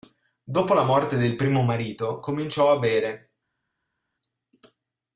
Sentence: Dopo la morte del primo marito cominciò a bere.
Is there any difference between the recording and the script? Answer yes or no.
no